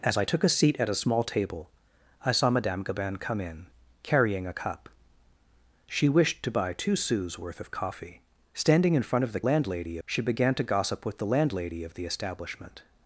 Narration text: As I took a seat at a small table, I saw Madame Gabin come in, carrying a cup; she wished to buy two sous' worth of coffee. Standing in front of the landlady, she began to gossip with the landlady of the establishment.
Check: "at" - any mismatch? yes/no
no